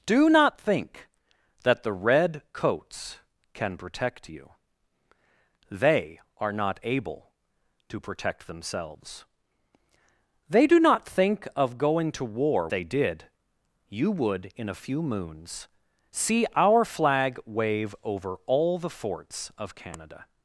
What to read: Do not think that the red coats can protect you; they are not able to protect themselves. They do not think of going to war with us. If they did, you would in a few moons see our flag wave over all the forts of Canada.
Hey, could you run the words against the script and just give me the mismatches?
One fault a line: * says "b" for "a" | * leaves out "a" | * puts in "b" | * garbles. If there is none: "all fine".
* leaves out "with us If"